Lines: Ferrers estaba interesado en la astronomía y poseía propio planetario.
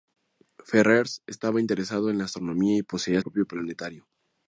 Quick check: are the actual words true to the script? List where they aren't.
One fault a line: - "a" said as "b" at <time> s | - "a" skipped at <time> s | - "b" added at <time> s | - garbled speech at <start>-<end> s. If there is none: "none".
none